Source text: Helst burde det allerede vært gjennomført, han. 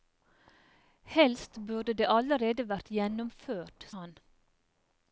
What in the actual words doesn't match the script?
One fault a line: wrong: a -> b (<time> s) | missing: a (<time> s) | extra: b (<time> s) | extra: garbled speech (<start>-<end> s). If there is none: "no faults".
no faults